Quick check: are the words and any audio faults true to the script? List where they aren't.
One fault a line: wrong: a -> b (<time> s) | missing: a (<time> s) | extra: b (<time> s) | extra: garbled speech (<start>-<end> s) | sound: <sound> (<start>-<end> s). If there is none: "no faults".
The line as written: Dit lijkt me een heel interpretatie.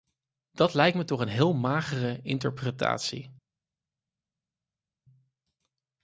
wrong: Dit -> Dat (0.5 s)
extra: toch (1.0 s)
extra: magere (1.5 s)